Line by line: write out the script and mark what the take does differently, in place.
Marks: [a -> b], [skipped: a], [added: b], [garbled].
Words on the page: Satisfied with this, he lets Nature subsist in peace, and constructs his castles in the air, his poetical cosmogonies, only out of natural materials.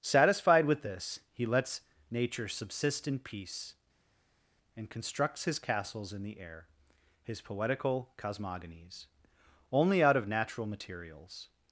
Satisfied with this, he lets Nature subsist in peace, and constructs his castles in the air, his poetical cosmogonies, only out of natural materials.